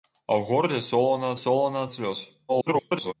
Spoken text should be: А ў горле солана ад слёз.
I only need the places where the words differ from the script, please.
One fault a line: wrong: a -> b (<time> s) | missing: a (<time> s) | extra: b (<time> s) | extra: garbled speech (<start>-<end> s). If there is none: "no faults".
extra: солана (1.4 s)
extra: garbled speech (2.5-3.1 s)